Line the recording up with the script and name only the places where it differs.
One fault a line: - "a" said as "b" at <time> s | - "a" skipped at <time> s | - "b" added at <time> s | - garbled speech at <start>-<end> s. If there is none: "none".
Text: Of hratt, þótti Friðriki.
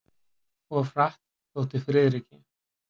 none